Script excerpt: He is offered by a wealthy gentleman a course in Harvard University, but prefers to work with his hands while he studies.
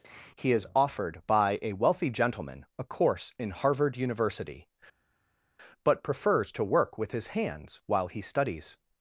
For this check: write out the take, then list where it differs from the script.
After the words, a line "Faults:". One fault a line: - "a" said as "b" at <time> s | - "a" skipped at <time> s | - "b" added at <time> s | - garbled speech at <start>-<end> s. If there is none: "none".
He is offered by a wealthy gentleman a course in Harvard University, but prefers to work with his hands while he studies.
Faults:
none